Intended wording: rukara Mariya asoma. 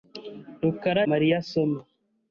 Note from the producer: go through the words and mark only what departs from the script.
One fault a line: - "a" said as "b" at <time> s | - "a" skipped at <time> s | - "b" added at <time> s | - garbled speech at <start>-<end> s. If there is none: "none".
none